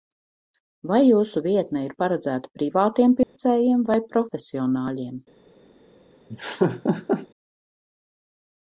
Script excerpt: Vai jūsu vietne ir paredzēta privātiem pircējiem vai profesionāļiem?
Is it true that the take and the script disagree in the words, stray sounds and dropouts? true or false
true